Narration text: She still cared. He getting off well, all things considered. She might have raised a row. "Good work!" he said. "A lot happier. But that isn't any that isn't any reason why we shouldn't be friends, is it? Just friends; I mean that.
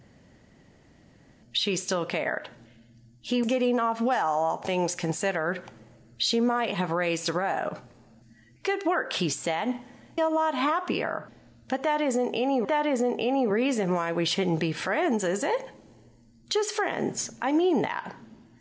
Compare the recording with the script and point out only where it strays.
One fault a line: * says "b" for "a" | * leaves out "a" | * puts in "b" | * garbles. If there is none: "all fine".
all fine